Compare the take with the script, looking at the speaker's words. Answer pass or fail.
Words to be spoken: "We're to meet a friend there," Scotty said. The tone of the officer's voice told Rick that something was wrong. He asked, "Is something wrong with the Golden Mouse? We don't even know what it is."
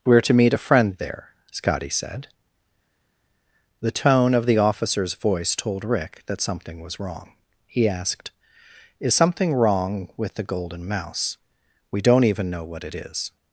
pass